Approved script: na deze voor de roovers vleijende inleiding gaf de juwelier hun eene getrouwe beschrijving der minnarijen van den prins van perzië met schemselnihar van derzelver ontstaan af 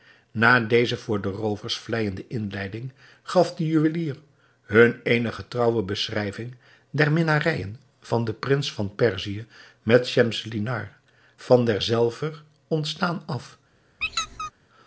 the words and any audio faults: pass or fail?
fail